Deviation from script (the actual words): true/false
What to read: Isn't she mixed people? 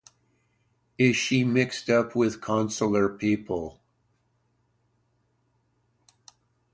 true